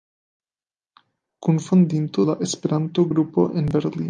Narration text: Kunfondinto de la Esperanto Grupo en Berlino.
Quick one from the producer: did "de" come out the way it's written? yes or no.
no